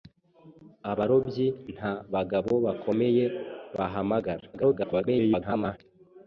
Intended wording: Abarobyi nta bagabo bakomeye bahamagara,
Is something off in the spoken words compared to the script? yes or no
yes